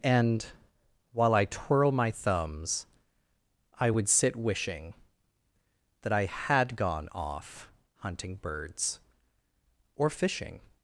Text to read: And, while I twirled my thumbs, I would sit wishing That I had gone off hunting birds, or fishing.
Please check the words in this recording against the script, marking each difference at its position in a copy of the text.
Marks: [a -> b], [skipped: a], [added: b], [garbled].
And, while I [twirled -> twirl] my thumbs, I would sit wishing That I had gone off hunting birds, or fishing.